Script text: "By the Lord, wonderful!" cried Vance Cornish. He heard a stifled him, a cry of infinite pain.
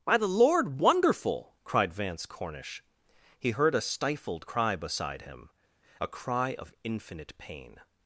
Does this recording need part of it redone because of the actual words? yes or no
yes